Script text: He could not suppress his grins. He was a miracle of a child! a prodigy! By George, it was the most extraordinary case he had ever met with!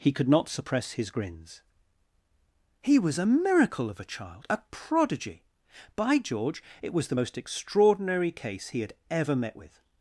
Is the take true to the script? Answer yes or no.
yes